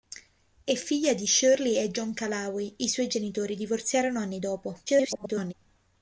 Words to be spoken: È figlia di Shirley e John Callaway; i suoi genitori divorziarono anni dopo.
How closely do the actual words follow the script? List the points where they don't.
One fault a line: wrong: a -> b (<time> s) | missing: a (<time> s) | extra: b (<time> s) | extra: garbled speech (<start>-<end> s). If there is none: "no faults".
extra: garbled speech (4.9-5.5 s)